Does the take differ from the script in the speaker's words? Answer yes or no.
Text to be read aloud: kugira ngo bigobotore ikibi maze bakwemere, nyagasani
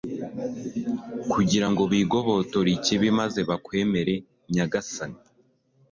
no